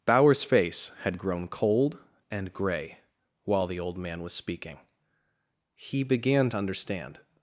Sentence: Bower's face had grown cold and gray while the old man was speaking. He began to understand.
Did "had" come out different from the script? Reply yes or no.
no